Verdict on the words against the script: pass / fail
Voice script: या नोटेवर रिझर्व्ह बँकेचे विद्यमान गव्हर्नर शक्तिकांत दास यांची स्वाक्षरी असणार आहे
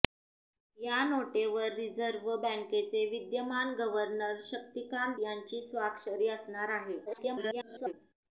fail